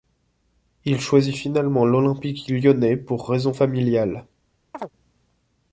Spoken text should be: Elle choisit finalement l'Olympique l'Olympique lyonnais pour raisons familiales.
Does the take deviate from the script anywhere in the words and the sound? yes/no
yes